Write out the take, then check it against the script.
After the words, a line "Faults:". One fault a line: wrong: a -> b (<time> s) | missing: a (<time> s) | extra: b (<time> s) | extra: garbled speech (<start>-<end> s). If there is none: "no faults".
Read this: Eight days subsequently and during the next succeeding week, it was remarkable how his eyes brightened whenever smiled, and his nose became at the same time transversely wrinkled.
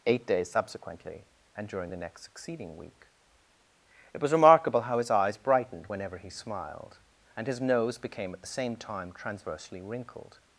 Eight days subsequently and during the next succeeding week, it was remarkable how his eyes brightened whenever he smiled, and his nose became at the same time transversely wrinkled.
Faults:
extra: he (6.2 s)